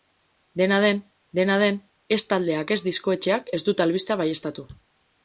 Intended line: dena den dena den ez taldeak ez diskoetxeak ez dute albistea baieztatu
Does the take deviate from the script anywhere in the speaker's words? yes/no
no